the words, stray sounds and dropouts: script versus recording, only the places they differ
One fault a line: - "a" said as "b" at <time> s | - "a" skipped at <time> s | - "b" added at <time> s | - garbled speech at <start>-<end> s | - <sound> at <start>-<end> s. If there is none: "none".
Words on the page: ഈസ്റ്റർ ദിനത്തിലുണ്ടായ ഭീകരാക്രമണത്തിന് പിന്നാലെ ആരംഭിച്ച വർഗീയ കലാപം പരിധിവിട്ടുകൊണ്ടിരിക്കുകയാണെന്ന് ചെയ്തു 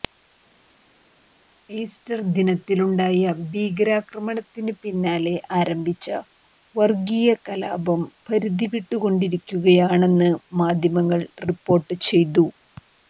- "മാധ്യമങ്ങൾ റിപ്പോർട്ട്" added at 10.6 s